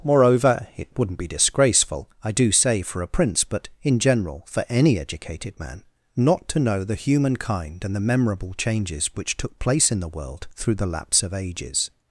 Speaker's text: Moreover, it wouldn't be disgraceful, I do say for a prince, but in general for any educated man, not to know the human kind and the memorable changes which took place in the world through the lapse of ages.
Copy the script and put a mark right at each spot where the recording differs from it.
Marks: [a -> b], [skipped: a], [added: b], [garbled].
Moreover, it wouldn't be disgraceful, I do say for a prince, but in general for any educated man, not to know the human kind and the memorable changes which took place in the world through the lapse of ages.